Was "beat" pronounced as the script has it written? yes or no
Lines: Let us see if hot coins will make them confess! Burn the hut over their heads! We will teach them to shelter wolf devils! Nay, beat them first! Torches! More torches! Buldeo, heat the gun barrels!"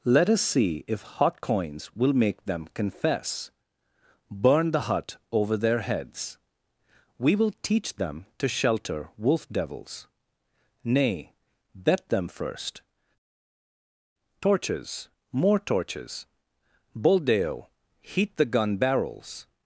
no